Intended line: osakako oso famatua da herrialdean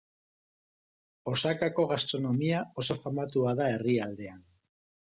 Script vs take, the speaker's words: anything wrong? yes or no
yes